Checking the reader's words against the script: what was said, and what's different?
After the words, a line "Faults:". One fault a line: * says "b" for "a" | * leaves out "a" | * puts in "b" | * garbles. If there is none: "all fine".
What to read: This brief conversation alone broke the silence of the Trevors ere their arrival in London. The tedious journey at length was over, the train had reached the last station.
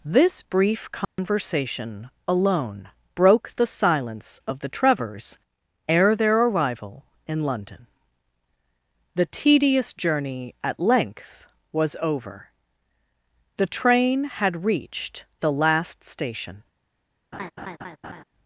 This brief conversation alone broke the silence of the Trevors ere their arrival in London. The tedious journey at length was over, the train had reached the last station.
Faults:
all fine